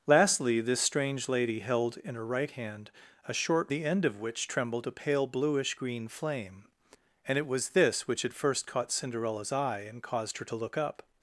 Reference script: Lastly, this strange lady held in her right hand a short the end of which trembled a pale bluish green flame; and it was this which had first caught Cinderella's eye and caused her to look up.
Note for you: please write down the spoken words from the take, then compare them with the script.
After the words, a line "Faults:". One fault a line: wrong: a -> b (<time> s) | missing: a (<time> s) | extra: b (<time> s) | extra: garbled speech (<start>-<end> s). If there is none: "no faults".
Lastly, this strange lady held in her right hand a short the end of which trembled a pale bluish green flame; and it was this which had first caught Cinderella's eye and caused her to look up.
Faults:
no faults